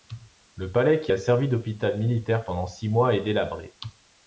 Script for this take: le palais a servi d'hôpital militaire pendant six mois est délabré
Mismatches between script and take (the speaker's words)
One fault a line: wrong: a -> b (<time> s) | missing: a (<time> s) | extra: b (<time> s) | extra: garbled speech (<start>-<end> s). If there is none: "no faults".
extra: qui (1.0 s)